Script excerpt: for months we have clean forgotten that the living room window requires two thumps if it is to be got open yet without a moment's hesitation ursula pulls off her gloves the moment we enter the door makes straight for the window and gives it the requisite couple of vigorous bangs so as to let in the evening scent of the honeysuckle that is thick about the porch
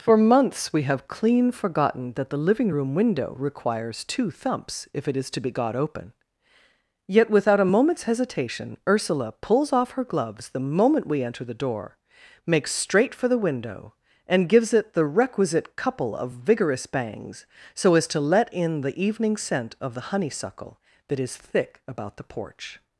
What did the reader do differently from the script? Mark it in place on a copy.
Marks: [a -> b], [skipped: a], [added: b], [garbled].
for months we have clean forgotten that the living room window requires two thumps if it is to be got open yet without a moment's hesitation ursula pulls off her gloves the moment we enter the door makes straight for the window and gives it the requisite couple of vigorous bangs so as to let in the evening scent of the honeysuckle that is thick about the porch